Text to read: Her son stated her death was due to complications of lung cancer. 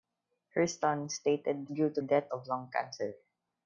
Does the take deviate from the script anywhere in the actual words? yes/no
yes